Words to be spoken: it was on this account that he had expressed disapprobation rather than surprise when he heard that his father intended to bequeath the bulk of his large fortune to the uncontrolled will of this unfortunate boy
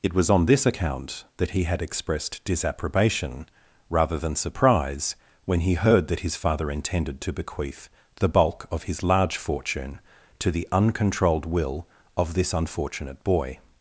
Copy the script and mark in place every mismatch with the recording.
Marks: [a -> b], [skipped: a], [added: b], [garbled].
it was on this account that he had expressed disapprobation rather than surprise when he heard that his father intended to bequeath the bulk of his large fortune to the uncontrolled will of this unfortunate boy